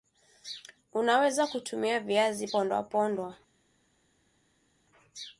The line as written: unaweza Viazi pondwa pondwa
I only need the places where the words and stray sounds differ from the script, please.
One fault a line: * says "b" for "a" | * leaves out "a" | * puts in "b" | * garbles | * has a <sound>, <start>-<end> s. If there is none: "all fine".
* puts in "kutumia"